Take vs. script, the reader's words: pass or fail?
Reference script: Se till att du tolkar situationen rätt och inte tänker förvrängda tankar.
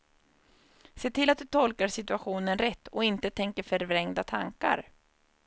pass